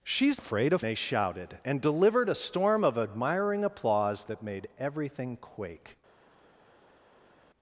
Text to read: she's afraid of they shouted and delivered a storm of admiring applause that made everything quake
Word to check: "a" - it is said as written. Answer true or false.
true